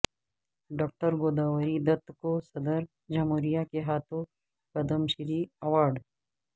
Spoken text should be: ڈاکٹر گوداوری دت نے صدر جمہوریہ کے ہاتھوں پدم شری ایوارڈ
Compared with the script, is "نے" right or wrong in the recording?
wrong